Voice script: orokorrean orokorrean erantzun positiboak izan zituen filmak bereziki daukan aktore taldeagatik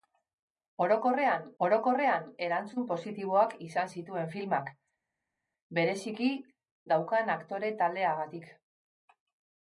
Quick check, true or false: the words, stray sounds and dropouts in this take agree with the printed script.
true